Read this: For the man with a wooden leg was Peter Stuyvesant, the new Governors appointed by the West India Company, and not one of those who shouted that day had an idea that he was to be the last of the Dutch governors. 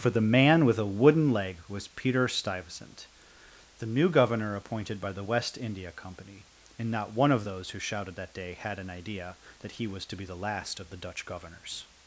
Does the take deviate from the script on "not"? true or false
false